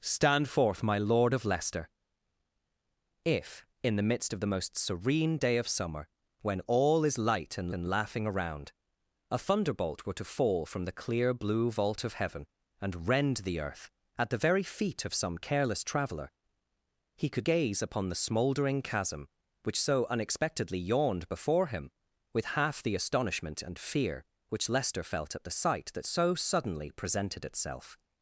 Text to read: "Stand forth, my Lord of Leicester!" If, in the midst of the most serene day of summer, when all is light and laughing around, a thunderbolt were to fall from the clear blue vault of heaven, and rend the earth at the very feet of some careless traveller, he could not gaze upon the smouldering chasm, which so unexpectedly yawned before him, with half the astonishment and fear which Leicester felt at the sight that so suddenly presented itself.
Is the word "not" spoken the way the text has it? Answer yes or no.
no